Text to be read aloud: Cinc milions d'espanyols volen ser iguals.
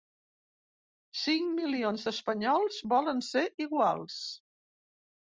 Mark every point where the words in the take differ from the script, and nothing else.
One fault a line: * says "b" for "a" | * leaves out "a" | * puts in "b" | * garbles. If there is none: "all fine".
all fine